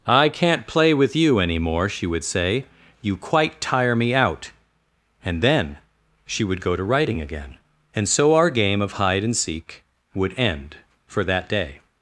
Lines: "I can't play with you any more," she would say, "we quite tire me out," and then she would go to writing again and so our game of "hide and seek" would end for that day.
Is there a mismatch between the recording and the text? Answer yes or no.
yes